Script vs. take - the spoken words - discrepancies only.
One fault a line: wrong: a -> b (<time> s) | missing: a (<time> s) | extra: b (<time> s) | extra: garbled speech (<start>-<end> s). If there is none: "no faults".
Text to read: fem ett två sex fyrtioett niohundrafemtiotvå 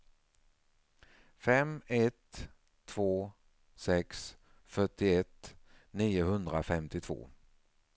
no faults